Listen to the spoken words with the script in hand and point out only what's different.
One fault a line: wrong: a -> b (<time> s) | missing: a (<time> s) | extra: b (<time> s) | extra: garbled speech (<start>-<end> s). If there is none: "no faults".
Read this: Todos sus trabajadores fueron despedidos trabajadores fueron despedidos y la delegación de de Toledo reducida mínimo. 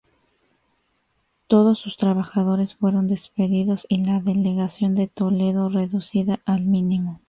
missing: trabajadores fueron despedidos (3.9 s)
missing: de (5.1 s)
extra: al (6.5 s)